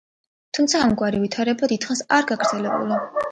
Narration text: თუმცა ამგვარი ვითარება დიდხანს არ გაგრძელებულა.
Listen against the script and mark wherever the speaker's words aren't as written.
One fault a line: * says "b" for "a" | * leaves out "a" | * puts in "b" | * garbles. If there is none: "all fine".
all fine